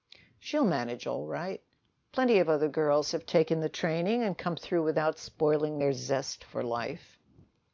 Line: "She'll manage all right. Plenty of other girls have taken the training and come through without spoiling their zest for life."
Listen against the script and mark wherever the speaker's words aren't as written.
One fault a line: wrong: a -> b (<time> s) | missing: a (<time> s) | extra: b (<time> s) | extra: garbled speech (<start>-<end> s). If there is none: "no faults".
no faults